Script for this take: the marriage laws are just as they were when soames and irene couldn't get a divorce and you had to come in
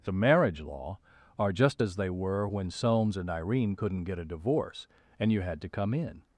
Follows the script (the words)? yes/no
no